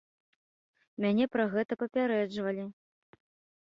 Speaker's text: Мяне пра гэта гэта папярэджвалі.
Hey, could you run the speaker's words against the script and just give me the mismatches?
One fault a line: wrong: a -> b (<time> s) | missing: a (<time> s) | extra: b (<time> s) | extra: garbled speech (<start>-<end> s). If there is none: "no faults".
missing: гэта (1.7 s)